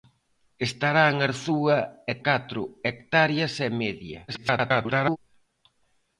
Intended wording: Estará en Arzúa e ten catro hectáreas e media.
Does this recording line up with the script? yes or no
no